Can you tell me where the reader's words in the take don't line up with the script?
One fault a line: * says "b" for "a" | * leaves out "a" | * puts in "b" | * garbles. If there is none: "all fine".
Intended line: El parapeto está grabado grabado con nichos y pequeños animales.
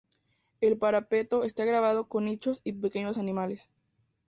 * leaves out "grabado"